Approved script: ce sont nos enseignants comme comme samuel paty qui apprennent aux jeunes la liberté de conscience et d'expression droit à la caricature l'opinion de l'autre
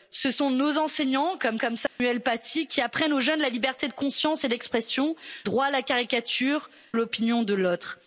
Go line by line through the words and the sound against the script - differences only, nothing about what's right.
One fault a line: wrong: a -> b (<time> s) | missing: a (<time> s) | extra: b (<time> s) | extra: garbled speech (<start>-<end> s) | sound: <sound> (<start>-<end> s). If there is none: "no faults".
sound: dropout (1.9-2.0 s)